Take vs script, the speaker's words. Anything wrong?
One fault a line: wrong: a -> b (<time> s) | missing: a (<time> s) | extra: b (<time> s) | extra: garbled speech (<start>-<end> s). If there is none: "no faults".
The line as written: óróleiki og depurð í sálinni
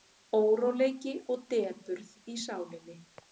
no faults